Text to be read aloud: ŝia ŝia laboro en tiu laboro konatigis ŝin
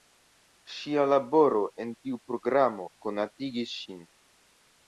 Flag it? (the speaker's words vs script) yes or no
yes